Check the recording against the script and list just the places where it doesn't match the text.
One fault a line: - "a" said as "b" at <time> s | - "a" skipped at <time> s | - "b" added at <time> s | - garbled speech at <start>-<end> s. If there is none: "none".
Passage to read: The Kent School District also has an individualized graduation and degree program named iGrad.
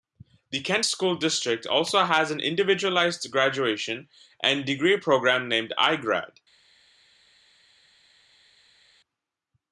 none